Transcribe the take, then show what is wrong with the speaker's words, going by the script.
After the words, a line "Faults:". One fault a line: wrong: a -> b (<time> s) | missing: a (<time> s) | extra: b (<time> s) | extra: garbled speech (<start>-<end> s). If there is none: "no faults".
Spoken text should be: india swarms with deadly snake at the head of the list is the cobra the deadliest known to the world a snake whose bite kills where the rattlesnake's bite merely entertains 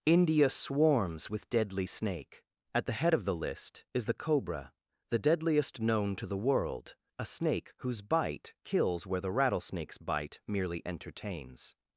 india swarms with deadly snake at the head of the list is the cobra the deadliest known to the world a snake whose bite kills where the rattlesnake's bite merely entertains
Faults:
no faults